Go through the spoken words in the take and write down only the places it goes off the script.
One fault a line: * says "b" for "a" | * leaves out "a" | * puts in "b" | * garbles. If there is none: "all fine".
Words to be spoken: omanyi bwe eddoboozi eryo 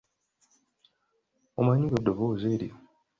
all fine